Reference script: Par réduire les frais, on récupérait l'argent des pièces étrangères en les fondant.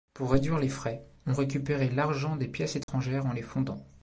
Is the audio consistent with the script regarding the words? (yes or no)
no